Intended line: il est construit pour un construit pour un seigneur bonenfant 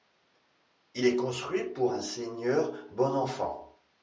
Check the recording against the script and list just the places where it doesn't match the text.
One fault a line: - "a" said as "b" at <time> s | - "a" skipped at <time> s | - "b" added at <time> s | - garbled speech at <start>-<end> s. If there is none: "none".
- "construit pour un" skipped at 2.0 s